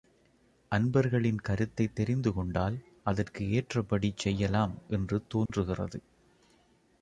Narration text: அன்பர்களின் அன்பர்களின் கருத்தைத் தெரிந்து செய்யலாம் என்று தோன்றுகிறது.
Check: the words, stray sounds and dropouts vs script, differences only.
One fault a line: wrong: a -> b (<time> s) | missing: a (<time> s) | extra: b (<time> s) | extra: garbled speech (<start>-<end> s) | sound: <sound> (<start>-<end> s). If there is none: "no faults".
missing: அன்பர்களின் (1.4 s)
extra: கொண்டால் அதற்கு ஏற்றபடி (2.3 s)
sound: dropout (5.5-5.5 s)